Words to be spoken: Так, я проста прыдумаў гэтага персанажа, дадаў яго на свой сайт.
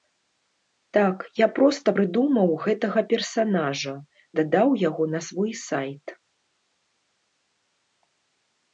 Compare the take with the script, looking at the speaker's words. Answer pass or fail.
pass